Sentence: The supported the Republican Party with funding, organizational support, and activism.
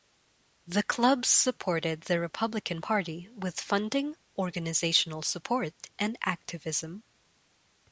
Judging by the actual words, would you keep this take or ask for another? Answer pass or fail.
fail